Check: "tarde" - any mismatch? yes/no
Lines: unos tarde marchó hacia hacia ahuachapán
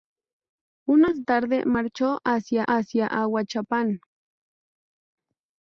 no